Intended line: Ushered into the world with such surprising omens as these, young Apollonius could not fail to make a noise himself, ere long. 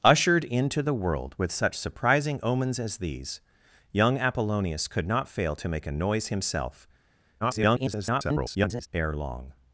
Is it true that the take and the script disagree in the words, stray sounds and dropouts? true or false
true